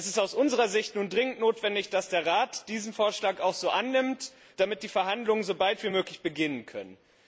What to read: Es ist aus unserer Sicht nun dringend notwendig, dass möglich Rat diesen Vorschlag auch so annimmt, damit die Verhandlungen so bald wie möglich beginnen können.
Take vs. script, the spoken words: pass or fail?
fail